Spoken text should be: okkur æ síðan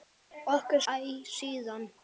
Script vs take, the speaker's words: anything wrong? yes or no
no